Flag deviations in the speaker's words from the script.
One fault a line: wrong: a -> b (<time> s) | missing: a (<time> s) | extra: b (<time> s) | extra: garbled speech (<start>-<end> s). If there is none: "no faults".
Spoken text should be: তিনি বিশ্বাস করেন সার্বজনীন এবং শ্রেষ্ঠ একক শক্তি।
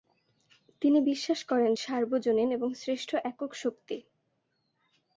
no faults